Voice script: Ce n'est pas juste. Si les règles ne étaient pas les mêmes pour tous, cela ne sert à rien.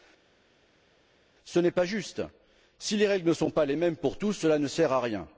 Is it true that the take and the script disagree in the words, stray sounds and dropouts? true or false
true